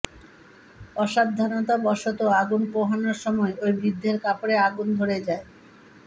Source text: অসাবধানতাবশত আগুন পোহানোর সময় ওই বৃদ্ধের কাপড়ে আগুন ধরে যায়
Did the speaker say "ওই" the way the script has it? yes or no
yes